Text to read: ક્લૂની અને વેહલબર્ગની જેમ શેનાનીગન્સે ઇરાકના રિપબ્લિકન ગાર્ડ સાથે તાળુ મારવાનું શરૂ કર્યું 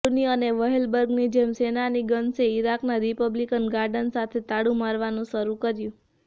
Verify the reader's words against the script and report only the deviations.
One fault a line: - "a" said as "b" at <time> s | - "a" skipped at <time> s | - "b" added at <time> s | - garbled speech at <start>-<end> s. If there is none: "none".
none